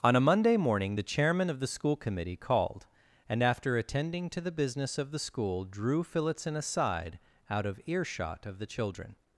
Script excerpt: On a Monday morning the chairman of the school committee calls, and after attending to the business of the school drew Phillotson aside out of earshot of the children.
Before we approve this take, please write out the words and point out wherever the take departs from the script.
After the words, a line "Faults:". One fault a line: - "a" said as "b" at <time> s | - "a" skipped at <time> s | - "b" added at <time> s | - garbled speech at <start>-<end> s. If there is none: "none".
On a Monday morning the chairman of the school committee called, and after attending to the business of the school drew Phillotson aside out of earshot of the children.
Faults:
- "calls" said as "called" at 2.4 s